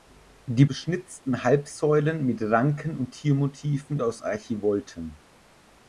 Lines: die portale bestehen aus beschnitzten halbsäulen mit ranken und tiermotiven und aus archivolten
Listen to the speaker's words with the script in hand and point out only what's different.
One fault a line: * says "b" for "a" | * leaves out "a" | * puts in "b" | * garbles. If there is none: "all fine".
* leaves out "portale bestehen aus"
* leaves out "und"